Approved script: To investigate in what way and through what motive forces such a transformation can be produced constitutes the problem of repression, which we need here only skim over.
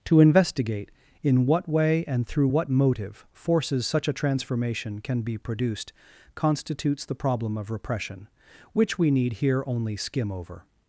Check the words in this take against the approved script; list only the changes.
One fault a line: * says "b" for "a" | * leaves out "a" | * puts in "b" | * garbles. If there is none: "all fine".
all fine